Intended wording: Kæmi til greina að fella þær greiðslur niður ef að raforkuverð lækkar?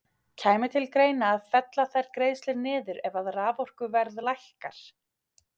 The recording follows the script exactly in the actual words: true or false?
true